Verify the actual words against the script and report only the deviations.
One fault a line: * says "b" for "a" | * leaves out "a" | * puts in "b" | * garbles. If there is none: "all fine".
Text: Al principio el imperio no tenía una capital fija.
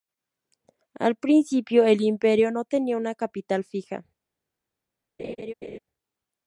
all fine